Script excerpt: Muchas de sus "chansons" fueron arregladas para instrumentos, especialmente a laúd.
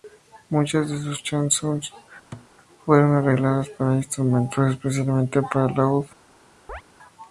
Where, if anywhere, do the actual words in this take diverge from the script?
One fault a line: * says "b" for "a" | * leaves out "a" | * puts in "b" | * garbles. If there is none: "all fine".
* says "para" for "a"